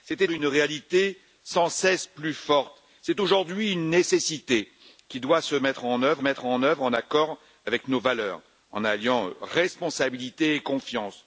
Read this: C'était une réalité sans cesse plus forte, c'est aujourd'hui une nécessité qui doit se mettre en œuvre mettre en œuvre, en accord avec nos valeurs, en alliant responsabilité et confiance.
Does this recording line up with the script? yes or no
yes